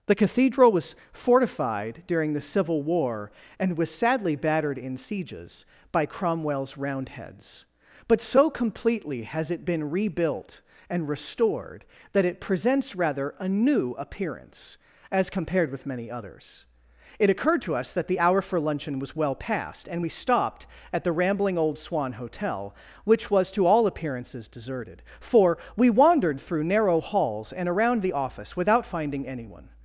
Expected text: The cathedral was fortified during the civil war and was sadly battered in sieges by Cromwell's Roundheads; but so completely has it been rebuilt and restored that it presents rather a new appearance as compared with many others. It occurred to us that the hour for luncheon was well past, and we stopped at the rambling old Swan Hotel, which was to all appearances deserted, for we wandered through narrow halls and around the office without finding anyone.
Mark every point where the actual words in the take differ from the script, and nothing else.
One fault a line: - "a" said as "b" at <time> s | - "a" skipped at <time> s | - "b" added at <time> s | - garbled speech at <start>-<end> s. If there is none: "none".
none